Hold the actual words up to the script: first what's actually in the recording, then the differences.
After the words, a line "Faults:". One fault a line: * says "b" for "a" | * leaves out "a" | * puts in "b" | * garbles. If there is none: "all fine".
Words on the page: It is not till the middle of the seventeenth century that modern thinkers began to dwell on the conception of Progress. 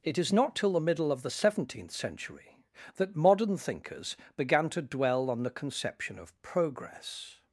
It is not till the middle of the seventeenth century that modern thinkers began to dwell on the conception of Progress.
Faults:
all fine